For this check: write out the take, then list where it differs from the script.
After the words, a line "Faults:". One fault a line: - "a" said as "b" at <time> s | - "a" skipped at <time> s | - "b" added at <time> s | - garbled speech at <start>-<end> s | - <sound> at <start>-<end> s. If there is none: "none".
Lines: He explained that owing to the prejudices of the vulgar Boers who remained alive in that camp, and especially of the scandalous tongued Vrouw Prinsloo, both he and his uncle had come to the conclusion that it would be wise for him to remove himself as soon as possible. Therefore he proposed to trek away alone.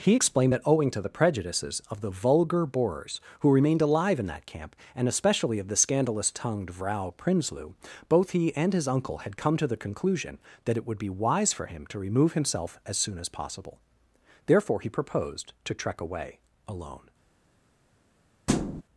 He explained that owing to the prejudices of the vulgar Boers who remained alive in that camp, and especially of the scandalous tongued Vrouw Prinsloo, both he and his uncle had come to the conclusion that it would be wise for him to remove himself as soon as possible. Therefore he proposed to trek away alone.
Faults:
- thud at 18.5-18.8 s